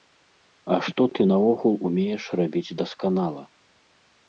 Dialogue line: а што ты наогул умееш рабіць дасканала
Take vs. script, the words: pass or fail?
pass